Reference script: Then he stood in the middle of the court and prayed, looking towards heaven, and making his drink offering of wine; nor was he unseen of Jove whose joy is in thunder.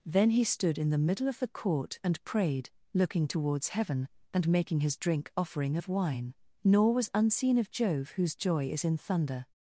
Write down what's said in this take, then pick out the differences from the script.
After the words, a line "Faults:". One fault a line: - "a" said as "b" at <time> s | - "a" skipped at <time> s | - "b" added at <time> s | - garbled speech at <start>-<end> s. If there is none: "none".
Then he stood in the middle of the court and prayed, looking towards heaven, and making his drink offering of wine; nor was unseen of Jove whose joy is in thunder.
Faults:
- "he" skipped at 7.1 s